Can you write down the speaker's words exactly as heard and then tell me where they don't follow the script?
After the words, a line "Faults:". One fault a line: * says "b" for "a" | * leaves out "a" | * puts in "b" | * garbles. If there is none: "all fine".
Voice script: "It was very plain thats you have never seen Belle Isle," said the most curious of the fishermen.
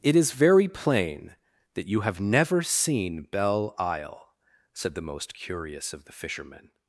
"It is very plain that you have never seen Belle Isle," said the most curious of the fishermen.
Faults:
* says "is" for "was"
* says "that" for "thats"